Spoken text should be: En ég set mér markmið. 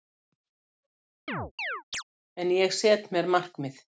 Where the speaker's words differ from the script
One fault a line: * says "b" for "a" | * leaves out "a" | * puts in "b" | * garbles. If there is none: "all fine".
all fine